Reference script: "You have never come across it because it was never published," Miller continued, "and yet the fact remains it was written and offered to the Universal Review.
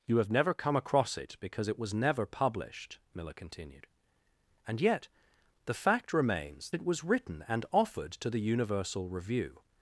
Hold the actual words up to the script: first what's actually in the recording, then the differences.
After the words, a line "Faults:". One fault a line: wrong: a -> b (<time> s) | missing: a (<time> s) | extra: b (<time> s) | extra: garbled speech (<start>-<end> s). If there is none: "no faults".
"You have never come across it because it was never published," Miller continued, "and yet the fact remains it was written and offered to the Universal Review.
Faults:
no faults